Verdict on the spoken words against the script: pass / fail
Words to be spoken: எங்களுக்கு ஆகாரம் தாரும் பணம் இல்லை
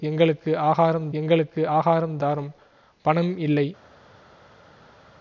fail